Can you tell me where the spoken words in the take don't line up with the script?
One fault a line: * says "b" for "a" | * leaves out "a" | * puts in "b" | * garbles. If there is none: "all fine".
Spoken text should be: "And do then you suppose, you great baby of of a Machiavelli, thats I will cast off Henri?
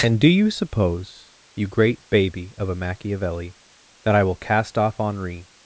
* leaves out "then"
* leaves out "of"
* says "that" for "thats"